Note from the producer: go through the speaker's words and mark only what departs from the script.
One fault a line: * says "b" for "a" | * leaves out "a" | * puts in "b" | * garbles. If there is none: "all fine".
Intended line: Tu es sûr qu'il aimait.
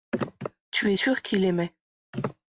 all fine